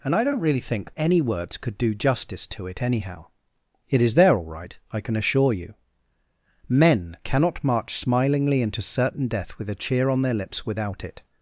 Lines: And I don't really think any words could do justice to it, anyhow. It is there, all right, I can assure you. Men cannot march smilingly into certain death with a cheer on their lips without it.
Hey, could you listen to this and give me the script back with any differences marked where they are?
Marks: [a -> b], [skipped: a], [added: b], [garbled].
And I don't really think any words could do justice to it, anyhow. It is there, all right, I can assure you. Men cannot march smilingly into certain death with a cheer on their lips without it.